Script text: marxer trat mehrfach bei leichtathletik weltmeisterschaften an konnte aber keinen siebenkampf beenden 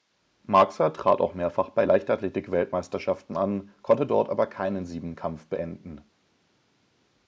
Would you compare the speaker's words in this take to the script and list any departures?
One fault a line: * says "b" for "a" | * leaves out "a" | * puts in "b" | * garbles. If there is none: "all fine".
* puts in "auch"
* puts in "dort"